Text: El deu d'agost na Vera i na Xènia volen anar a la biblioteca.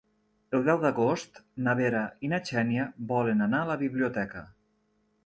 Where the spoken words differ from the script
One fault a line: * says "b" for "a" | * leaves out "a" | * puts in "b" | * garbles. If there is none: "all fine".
all fine